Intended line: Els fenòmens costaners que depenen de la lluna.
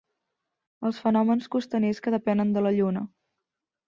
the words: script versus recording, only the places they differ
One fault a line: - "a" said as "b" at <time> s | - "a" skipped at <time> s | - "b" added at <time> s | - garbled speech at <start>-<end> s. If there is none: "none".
none